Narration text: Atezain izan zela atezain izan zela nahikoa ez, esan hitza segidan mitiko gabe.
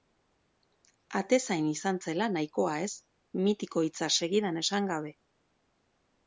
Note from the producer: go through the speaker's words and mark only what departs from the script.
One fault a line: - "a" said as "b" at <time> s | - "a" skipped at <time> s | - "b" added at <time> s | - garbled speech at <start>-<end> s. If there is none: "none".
- "atezain izan zela" skipped at 2.3 s
- "esan" said as "mitiko" at 3.5 s
- "mitiko" said as "esan" at 4.6 s